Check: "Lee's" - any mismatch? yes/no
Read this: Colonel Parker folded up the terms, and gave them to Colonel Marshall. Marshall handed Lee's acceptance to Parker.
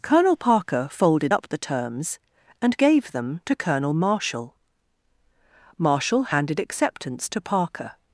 yes